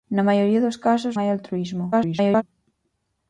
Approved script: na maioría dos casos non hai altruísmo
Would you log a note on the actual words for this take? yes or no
yes